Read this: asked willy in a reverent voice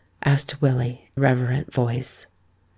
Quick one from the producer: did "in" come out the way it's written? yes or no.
no